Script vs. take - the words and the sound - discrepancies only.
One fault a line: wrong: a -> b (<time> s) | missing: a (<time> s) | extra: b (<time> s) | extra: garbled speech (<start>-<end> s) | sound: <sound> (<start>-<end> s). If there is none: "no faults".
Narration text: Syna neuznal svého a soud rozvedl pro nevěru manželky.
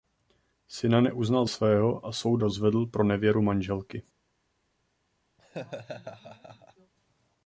sound: laugh (5.4-6.9 s)